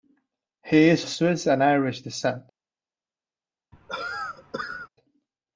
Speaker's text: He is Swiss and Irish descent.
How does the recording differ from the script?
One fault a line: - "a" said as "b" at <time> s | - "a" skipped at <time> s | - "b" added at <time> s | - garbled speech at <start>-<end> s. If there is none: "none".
none